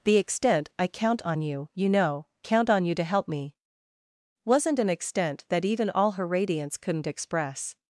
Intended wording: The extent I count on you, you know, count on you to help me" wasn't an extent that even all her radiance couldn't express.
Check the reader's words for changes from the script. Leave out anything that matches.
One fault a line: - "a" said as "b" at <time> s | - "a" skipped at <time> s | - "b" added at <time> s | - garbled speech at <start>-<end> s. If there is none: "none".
none